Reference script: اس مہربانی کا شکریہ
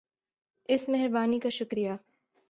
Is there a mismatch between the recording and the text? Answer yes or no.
no